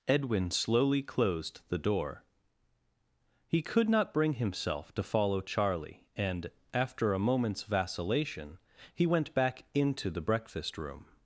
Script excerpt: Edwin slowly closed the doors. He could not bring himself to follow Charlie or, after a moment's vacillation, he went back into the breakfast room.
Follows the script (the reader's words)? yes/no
no